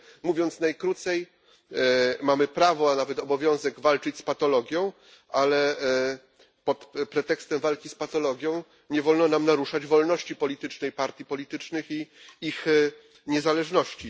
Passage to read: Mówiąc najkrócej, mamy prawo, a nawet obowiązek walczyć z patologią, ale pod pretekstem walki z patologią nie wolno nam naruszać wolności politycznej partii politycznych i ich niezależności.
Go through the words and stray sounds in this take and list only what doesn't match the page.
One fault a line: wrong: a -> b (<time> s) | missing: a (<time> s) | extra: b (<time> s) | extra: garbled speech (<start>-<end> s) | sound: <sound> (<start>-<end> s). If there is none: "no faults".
no faults